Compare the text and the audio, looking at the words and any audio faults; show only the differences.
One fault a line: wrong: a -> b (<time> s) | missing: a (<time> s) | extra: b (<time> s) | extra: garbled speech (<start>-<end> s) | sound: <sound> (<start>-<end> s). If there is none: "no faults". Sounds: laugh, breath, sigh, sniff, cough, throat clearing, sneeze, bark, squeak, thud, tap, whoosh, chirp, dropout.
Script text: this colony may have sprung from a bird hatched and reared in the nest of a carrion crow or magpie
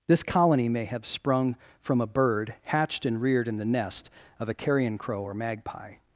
no faults